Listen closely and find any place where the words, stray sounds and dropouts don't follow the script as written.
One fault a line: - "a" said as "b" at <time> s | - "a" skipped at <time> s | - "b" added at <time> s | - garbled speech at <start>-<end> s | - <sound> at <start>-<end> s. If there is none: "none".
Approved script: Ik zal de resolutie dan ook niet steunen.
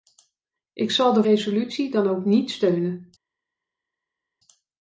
none